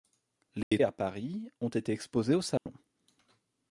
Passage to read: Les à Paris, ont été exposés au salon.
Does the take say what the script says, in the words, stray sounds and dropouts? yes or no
no